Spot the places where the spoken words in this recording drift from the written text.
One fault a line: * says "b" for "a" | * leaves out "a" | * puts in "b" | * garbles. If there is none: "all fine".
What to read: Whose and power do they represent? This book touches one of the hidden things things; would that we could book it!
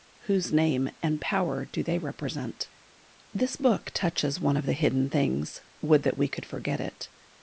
* puts in "name"
* leaves out "things"
* says "forget" for "book"